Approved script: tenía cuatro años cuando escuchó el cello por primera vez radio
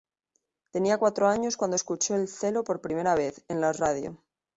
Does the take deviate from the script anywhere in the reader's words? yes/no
yes